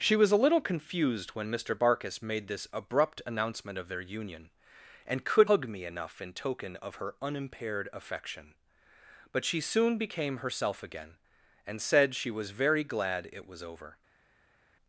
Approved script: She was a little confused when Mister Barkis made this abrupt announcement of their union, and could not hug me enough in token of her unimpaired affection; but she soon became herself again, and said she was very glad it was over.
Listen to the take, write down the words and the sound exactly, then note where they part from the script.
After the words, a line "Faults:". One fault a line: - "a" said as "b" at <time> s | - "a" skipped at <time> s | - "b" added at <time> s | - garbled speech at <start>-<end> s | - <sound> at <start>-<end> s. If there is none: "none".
She was a little confused when Mister Barkis made this abrupt announcement of their union, and could hug me enough in token of her unimpaired affection; but she soon became herself again, and said she was very glad it was over.
Faults:
- "not" skipped at 5.5 s